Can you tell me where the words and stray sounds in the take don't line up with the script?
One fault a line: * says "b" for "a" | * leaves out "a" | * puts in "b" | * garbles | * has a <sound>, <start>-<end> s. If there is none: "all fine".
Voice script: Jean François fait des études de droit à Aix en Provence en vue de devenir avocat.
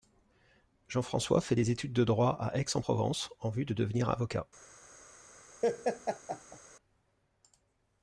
* has a laugh, 5.6-6.6 s